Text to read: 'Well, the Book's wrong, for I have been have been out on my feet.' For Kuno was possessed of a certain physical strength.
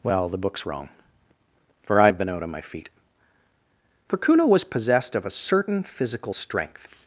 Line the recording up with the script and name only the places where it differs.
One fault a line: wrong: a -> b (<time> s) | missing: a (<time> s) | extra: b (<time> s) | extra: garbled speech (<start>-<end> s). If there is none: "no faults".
missing: have been (2.3 s)